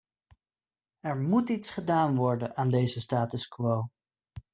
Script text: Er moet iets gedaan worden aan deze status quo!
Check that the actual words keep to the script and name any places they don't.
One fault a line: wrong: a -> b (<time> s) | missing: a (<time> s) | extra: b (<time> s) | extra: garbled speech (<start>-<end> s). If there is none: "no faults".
no faults